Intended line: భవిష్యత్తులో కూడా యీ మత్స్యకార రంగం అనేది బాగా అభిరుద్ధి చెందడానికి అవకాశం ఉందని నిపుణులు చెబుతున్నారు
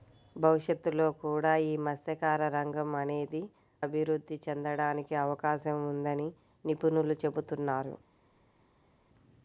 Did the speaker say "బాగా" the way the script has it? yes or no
no